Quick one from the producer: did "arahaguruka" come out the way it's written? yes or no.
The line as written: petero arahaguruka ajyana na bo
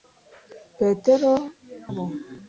no